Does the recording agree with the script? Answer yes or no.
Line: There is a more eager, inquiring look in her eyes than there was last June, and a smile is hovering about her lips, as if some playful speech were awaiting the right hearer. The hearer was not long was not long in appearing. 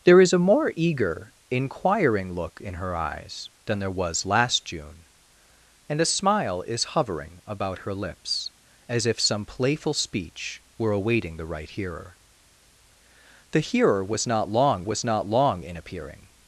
yes